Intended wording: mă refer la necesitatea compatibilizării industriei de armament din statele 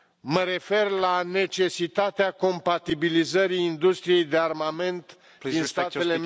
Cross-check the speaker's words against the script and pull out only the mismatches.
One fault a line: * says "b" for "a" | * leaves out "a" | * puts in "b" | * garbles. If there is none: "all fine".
all fine